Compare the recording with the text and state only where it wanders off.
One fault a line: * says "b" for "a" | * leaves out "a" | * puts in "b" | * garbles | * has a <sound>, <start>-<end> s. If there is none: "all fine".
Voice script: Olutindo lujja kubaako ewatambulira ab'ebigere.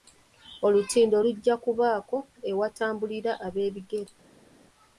all fine